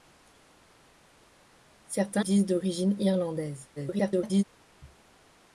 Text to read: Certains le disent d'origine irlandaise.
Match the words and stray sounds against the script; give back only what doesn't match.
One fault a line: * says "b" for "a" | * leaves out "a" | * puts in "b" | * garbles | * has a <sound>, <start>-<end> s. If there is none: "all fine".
* leaves out "le"
* garbles